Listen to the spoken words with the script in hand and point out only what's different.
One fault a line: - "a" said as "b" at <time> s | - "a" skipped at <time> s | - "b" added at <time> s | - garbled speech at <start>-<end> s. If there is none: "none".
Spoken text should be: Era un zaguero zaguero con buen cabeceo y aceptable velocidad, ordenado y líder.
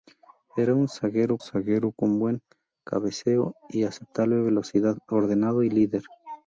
none